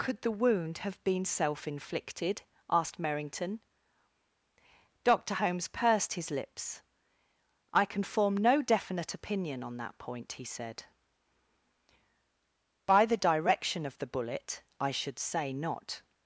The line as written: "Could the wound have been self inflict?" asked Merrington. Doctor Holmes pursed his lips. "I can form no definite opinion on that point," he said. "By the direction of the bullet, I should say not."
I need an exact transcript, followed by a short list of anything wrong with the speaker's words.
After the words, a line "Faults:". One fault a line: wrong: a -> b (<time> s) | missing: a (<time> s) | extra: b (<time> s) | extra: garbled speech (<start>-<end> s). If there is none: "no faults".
"Could the wound have been self inflicted?" asked Merrington. Doctor Holmes pursed his lips. "I can form no definite opinion on that point," he said. "By the direction of the bullet, I should say not."
Faults:
wrong: inflict -> inflicted (1.7 s)